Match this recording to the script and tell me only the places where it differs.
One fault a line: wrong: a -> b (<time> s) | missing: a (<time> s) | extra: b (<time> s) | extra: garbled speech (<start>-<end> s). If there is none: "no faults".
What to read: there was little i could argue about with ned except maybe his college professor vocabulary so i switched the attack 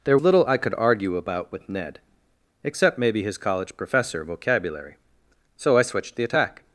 missing: was (0.2 s)